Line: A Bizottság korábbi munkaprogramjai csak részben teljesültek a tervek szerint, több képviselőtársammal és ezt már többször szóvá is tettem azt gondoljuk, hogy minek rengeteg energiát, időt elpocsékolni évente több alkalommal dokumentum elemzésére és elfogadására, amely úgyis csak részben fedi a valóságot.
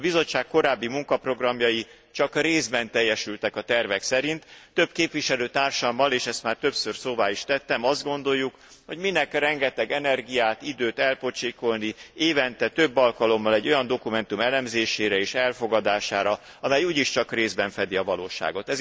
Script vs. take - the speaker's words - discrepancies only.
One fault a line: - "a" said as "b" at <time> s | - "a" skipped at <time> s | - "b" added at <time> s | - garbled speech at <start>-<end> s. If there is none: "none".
- "egy olyan" added at 13.5 s